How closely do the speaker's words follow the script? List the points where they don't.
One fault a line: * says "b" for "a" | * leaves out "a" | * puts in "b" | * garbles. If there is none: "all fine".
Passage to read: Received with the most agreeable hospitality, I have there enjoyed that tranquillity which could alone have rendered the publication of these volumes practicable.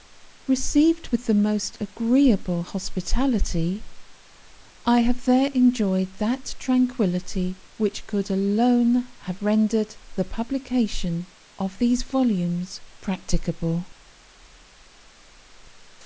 all fine